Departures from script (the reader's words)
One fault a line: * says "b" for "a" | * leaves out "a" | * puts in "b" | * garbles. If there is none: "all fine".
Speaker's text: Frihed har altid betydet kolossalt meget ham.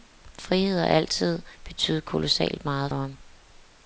all fine